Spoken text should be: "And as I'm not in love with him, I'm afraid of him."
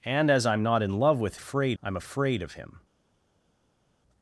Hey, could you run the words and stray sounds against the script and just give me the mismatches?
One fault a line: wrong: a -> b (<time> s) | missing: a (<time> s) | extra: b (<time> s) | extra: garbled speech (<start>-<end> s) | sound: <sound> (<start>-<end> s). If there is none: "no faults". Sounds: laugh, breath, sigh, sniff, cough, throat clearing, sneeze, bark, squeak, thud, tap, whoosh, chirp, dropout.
wrong: him -> afraid (1.3 s)